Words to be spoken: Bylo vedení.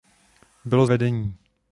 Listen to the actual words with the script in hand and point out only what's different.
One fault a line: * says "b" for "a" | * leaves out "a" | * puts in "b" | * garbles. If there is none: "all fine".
all fine